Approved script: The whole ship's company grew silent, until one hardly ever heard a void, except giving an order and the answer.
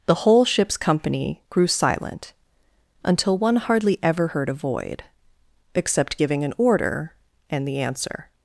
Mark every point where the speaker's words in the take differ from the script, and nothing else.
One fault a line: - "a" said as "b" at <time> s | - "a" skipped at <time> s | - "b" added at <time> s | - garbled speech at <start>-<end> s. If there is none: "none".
none